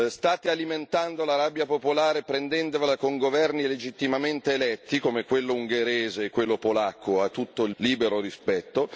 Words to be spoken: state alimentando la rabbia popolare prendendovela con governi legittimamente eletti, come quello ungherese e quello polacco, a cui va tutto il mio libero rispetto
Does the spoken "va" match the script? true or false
false